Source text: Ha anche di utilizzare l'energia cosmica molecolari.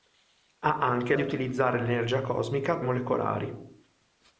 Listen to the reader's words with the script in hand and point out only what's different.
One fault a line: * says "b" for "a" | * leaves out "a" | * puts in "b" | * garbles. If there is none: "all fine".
all fine